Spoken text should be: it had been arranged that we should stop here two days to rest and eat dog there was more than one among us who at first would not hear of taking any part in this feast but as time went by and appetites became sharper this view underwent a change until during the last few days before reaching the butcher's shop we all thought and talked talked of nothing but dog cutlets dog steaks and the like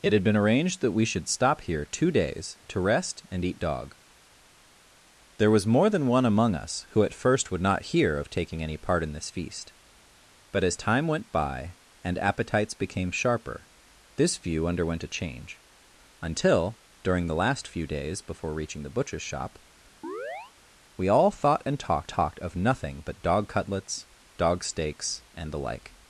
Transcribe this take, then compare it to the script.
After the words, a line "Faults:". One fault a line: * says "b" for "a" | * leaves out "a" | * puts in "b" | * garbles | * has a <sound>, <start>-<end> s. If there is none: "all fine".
it had been arranged that we should stop here two days to rest and eat dog there was more than one among us who at first would not hear of taking any part in this feast but as time went by and appetites became sharper this view underwent a change until during the last few days before reaching the butcher's shop we all thought and talked talked of nothing but dog cutlets dog steaks and the like
Faults:
* has a chirp, 20.0-20.5 s